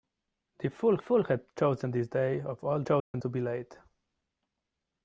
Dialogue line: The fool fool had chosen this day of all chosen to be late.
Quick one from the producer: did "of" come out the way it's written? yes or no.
yes